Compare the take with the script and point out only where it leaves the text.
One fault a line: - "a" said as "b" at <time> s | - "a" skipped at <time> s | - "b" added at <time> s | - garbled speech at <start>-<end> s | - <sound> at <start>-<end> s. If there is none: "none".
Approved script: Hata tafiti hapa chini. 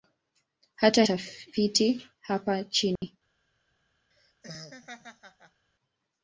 - dropout at 3.0-3.0 s
- laugh at 4.1-5.7 s